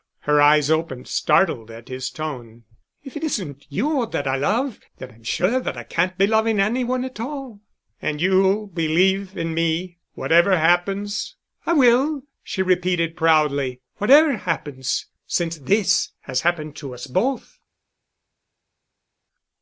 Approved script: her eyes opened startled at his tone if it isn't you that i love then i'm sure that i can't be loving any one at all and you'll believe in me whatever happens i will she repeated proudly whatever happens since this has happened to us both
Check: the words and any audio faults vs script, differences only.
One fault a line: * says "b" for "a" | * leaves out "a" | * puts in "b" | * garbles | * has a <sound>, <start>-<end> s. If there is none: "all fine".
all fine